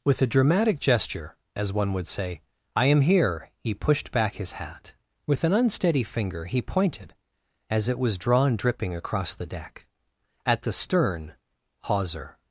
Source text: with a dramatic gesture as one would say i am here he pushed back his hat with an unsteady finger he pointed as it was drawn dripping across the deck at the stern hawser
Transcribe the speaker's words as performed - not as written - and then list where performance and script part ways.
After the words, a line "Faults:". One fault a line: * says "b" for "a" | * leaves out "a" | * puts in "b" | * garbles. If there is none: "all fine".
with a dramatic gesture as one would say i am here he pushed back his hat with an unsteady finger he pointed as it was drawn dripping across the deck at the stern hawser
Faults:
all fine